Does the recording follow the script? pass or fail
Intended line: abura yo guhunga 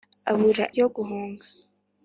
pass